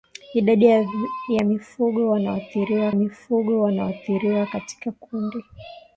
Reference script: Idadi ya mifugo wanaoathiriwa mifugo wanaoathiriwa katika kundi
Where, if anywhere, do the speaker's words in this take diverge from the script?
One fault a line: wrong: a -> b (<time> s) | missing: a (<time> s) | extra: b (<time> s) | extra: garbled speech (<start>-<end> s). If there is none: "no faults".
no faults